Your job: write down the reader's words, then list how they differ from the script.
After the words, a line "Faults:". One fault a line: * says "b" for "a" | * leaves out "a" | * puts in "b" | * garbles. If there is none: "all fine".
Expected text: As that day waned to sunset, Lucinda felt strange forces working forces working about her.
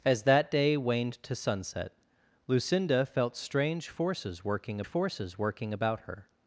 As that day waned to sunset, Lucinda felt strange forces working forces working about her.
Faults:
all fine